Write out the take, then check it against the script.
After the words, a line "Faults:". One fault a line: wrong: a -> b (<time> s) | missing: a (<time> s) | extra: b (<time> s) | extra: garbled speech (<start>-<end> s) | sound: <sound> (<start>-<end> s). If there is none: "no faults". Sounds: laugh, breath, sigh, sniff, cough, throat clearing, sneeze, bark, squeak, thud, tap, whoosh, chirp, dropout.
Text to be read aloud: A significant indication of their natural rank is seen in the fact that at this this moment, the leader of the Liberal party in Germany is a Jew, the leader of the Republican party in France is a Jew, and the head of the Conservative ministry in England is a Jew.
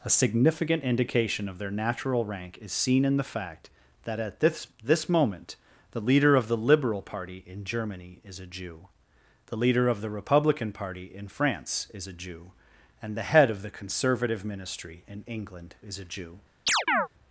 A significant indication of their natural rank is seen in the fact that at this this moment, the leader of the Liberal party in Germany is a Jew, the leader of the Republican party in France is a Jew, and the head of the Conservative ministry in England is a Jew.
Faults:
sound: chirp (16.7-17.1 s)